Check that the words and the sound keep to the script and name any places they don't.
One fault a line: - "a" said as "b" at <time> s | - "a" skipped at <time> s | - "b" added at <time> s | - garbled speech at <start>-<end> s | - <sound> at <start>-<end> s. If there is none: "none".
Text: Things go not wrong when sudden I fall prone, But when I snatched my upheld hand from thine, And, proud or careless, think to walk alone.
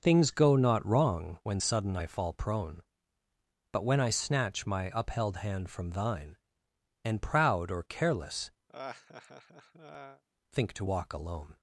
- "snatched" said as "snatch" at 4.1 s
- laugh at 8.7-10.2 s